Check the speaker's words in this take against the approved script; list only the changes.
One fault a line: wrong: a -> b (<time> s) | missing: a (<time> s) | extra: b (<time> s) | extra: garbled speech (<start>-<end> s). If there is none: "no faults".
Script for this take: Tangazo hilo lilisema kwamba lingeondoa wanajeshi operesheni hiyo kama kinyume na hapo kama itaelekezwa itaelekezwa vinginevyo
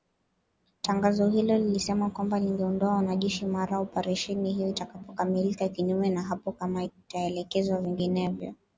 extra: mara (3.5 s)
wrong: kama -> itakapokamilika (4.7 s)
missing: itaelekezwa (7.8 s)